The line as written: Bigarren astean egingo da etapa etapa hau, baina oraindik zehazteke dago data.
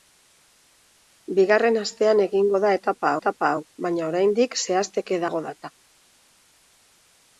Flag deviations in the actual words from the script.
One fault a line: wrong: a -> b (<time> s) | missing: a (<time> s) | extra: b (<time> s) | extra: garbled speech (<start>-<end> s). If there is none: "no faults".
no faults